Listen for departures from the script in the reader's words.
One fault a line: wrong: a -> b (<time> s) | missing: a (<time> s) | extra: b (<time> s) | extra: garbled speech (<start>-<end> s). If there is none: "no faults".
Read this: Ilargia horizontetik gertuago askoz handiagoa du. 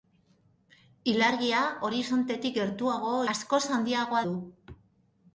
no faults